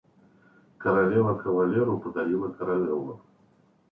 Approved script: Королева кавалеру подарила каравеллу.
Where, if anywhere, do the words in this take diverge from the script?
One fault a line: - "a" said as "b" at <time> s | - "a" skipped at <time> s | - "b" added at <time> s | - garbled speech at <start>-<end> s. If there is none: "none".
none